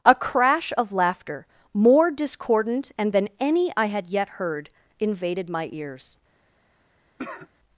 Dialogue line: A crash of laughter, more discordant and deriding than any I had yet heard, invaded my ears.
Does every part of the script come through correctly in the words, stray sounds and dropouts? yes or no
no